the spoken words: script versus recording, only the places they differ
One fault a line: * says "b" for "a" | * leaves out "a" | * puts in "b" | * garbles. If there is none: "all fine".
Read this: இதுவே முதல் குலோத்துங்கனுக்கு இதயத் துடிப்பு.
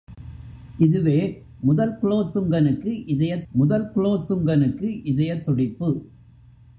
* puts in "முதல் குலோத்துங்கனுக்கு இதயத்"